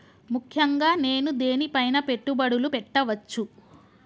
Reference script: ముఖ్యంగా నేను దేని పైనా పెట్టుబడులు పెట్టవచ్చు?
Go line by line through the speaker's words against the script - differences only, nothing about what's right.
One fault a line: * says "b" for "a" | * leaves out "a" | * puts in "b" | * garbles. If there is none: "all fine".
all fine